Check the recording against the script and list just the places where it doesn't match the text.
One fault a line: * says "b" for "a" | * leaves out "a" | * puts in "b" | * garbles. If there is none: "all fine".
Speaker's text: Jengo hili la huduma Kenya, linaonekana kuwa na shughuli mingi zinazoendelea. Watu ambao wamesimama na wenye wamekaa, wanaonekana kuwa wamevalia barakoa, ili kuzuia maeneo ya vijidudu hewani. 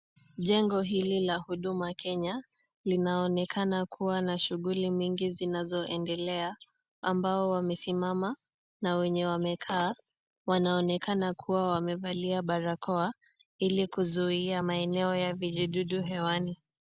* leaves out "Watu"